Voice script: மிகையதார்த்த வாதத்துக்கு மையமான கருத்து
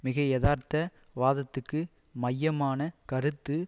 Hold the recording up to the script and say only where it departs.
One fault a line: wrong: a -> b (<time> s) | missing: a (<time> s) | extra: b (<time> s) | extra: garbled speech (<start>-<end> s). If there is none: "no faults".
no faults